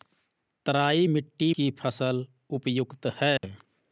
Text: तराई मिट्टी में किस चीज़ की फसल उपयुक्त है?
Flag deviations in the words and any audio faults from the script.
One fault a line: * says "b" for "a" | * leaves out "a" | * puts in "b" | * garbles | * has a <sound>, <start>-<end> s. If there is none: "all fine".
* leaves out "में किस चीज़"
* has a dropout, 3.4-3.4 s